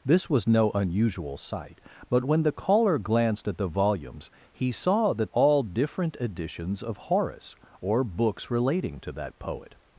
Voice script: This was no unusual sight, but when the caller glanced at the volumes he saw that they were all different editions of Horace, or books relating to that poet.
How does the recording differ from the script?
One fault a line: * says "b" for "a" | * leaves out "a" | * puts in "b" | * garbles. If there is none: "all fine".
* leaves out "they were"